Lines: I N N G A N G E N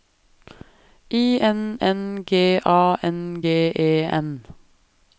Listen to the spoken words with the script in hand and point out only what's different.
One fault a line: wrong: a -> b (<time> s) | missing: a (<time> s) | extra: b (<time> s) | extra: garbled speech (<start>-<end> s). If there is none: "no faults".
no faults